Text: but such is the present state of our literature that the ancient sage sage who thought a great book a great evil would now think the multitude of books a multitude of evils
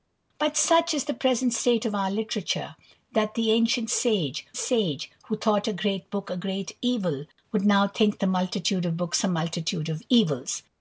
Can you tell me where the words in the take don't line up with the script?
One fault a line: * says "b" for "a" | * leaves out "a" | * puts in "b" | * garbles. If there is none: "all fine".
all fine